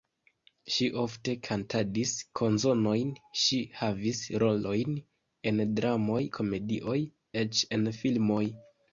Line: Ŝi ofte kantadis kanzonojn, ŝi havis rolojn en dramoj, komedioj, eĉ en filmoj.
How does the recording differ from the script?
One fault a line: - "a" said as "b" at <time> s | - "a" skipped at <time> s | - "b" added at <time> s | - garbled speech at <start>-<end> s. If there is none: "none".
none